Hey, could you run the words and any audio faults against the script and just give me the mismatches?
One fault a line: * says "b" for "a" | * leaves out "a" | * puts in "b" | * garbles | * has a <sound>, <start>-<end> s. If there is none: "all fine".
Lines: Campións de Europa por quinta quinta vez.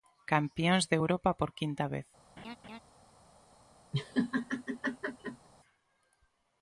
* leaves out "quinta"
* has a laugh, 2.4-2.8 s
* has a laugh, 3.9-5.5 s